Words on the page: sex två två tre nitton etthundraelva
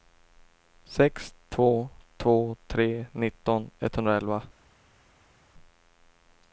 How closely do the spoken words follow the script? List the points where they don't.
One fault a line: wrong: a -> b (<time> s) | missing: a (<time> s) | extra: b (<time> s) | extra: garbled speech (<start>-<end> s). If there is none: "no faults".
no faults